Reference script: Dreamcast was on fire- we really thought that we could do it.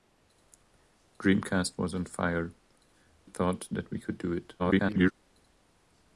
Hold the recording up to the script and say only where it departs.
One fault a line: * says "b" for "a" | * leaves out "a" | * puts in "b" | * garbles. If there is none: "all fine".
* leaves out "we really"
* garbles